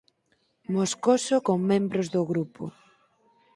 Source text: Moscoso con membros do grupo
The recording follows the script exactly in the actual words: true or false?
true